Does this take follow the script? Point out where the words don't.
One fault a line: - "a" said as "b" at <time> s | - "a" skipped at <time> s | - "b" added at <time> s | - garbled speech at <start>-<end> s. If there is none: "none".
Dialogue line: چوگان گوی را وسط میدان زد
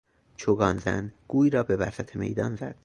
- "زن" added at 0.8 s
- "به" added at 1.6 s